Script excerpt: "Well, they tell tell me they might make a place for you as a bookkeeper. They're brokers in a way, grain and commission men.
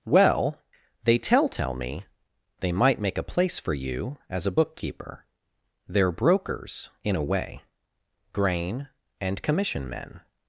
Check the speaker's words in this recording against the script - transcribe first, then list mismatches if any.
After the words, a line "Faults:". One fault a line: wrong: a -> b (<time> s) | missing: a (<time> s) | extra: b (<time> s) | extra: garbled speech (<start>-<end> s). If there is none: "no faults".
"Well, they tell tell me they might make a place for you as a bookkeeper. They're brokers in a way, grain and commission men.
Faults:
no faults